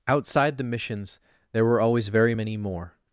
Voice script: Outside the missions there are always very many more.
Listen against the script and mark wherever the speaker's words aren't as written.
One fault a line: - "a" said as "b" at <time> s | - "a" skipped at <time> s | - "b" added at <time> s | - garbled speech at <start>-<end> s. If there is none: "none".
- "are" said as "were" at 1.6 s